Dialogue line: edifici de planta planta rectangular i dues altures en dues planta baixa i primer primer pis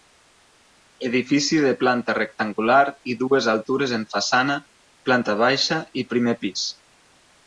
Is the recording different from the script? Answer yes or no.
yes